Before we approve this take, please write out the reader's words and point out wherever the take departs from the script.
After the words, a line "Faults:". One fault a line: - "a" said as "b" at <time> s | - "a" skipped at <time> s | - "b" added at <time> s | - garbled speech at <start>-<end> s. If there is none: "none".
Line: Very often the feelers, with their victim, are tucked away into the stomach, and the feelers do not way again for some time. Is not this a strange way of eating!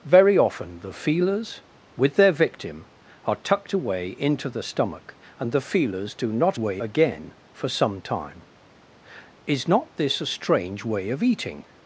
Very often the feelers, with their victim, are tucked away into the stomach, and the feelers do not way again for some time. Is not this a strange way of eating!
Faults:
none